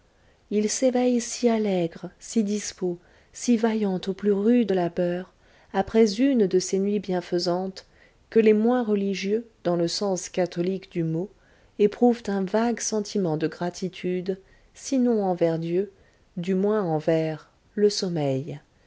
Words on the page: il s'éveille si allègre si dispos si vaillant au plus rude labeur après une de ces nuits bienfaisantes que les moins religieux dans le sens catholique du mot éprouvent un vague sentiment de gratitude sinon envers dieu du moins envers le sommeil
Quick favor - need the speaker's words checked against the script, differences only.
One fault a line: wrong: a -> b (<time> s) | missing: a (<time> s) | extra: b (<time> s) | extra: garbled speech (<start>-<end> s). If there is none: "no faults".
no faults